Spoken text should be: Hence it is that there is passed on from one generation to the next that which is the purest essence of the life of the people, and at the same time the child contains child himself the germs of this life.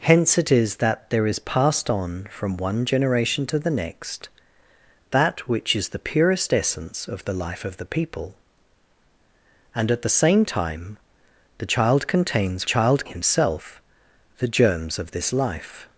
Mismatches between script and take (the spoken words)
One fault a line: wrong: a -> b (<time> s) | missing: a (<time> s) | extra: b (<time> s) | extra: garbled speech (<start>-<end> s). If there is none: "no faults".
no faults